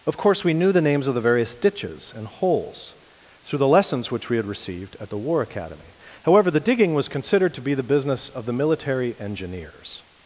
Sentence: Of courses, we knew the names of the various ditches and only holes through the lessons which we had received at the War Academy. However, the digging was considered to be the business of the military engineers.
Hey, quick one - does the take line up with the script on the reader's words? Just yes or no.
no